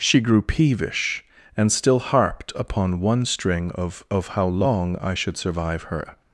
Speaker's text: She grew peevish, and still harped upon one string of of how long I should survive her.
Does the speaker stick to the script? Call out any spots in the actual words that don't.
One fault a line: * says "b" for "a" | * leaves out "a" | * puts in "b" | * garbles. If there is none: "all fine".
all fine